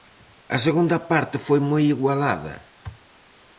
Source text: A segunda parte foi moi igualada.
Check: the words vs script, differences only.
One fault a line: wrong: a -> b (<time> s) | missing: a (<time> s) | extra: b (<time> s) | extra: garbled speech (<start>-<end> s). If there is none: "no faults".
no faults